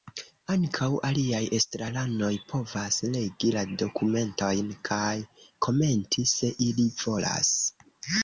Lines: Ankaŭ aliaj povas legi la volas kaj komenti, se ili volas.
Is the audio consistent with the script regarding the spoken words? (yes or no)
no